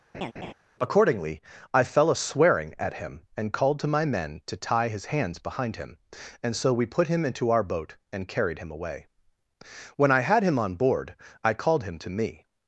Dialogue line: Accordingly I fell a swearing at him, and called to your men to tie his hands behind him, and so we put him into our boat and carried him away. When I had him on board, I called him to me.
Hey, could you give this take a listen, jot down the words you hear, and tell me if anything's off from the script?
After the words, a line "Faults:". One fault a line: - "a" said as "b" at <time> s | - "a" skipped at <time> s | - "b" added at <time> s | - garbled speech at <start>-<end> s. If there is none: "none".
Accordingly I fell a swearing at him, and called to my men to tie his hands behind him, and so we put him into our boat and carried him away. When I had him on board, I called him to me.
Faults:
- "your" said as "my" at 3.9 s